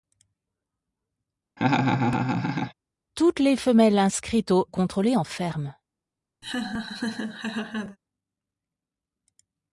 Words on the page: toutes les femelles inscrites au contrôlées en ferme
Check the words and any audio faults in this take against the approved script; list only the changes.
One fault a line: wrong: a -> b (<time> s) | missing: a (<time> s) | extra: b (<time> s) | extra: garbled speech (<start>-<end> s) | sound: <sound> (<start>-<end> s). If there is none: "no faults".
sound: laugh (1.6-2.7 s)
sound: laugh (6.4-8.0 s)